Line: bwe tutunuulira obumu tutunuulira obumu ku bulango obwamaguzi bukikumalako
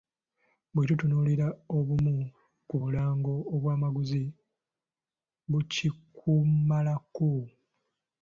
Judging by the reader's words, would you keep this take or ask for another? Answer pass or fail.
fail